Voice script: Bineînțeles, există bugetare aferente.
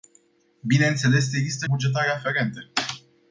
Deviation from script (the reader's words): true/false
false